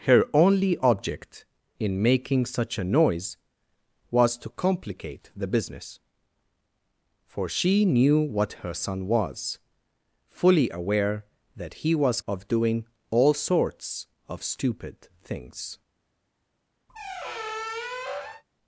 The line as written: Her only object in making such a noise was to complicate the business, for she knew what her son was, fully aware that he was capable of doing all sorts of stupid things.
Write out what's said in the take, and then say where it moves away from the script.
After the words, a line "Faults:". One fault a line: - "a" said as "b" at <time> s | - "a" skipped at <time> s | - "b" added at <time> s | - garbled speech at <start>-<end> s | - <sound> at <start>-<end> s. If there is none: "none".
Her only object in making such a noise was to complicate the business, for she knew what her son was, fully aware that he was of doing all sorts of stupid things.
Faults:
- "capable" skipped at 12.2 s
- squeak at 16.9-18.4 s